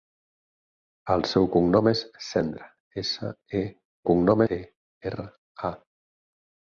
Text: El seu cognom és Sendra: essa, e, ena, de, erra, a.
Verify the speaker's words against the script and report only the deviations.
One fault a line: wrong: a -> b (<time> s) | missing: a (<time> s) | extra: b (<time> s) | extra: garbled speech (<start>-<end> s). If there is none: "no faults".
wrong: ena -> cognom (4.1 s)